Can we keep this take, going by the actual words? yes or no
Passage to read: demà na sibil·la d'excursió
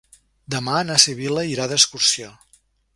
no